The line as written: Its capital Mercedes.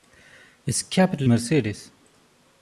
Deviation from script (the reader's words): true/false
false